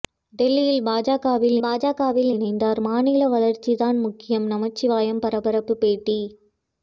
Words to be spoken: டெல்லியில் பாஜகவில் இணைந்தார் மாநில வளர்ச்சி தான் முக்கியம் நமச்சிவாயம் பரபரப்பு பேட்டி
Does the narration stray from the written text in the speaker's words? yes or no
yes